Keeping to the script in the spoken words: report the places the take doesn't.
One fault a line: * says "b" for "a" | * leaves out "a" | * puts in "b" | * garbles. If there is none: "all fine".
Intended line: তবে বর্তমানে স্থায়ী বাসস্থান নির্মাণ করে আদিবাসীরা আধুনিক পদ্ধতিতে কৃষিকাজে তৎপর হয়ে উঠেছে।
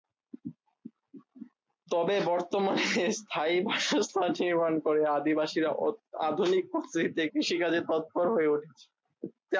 all fine